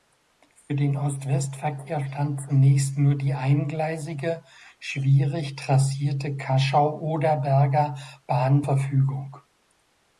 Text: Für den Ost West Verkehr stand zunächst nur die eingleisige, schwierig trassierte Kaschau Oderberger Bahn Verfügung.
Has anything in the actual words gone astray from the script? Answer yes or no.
no